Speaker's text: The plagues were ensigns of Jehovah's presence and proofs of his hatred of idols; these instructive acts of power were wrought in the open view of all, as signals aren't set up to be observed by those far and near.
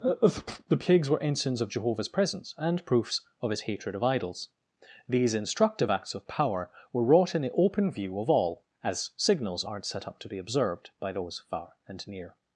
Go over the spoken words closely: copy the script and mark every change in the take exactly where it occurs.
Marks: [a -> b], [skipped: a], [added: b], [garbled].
The plagues were ensigns of Jehovah's presence and proofs of his hatred of idols; these instructive acts of power were wrought in the open view of all, as signals aren't set up to be observed by those far and near.